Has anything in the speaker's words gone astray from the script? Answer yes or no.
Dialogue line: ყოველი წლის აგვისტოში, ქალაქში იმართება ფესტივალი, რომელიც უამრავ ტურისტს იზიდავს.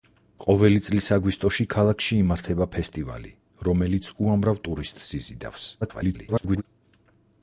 yes